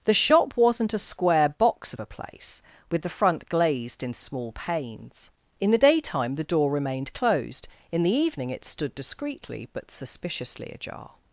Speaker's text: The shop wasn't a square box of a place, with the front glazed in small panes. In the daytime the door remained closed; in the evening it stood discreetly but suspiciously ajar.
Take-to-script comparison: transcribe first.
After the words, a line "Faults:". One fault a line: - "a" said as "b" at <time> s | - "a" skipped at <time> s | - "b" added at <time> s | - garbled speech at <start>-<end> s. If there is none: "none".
The shop wasn't a square box of a place, with the front glazed in small panes. In the daytime the door remained closed; in the evening it stood discreetly but suspiciously ajar.
Faults:
none